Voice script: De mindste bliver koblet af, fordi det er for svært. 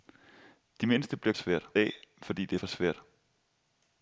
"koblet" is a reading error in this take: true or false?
true